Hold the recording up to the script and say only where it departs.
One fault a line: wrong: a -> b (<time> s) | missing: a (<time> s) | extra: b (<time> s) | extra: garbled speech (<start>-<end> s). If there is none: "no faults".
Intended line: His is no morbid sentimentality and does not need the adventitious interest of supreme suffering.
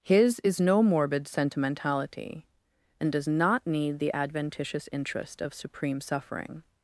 no faults